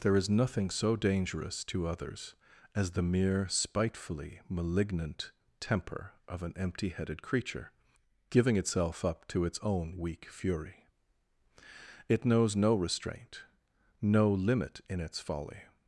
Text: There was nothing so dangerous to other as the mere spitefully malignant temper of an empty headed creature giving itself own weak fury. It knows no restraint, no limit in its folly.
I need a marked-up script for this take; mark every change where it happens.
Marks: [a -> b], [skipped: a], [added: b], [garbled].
There [was -> is] nothing so dangerous to [other -> others] as the mere spitefully malignant temper of an empty headed creature giving itself [added: up to its] own weak fury. It knows no restraint, no limit in its folly.